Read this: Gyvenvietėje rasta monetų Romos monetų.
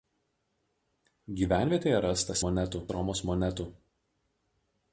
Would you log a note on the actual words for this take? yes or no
no